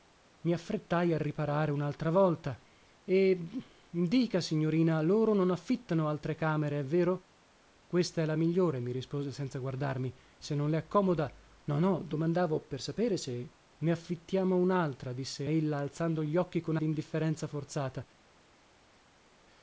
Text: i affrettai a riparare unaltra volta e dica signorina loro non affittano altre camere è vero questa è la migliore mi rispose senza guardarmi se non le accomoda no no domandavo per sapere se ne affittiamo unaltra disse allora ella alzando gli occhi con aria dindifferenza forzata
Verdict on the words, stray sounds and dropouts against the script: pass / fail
fail